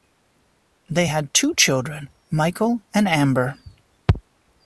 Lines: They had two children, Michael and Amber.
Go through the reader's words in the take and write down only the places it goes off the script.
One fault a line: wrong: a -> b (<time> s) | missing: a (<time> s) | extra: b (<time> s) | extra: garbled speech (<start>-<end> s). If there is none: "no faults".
no faults